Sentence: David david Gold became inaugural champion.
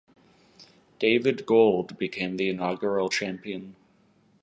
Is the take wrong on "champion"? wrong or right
right